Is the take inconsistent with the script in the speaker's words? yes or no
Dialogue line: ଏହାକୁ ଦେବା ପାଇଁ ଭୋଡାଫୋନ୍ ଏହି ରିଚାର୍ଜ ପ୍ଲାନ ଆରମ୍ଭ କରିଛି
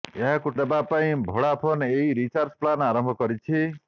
no